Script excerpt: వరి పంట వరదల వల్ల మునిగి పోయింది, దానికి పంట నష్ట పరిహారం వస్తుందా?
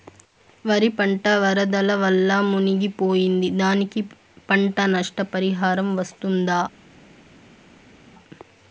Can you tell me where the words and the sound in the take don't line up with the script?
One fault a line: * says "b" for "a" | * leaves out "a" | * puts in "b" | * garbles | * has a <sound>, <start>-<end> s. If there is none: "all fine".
all fine